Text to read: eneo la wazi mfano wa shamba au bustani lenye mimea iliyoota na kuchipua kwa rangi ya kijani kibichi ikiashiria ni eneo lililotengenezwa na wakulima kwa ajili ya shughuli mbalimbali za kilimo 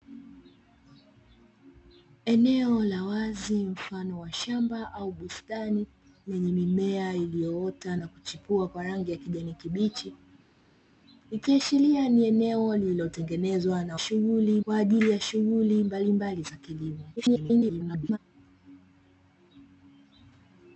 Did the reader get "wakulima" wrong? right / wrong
wrong